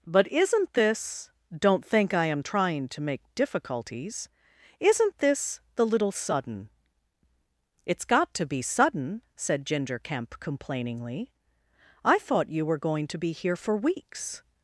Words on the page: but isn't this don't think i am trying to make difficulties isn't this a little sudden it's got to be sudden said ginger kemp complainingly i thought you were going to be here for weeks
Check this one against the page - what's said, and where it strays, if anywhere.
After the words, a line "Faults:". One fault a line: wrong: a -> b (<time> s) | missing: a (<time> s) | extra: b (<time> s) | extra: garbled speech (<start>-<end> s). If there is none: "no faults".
but isn't this don't think i am trying to make difficulties isn't this the little sudden it's got to be sudden said ginger kemp complainingly i thought you were going to be here for weeks
Faults:
wrong: a -> the (5.8 s)